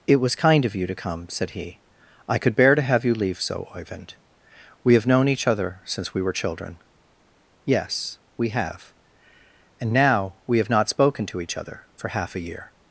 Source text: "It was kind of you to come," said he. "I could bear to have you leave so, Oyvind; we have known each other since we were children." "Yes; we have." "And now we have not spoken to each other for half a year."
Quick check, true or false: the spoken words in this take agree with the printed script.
true